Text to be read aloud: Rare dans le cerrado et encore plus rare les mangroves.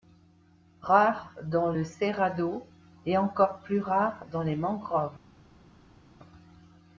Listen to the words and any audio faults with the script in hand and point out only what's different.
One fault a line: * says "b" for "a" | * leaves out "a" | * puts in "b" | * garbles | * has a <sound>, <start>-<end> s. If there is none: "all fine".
* puts in "dans"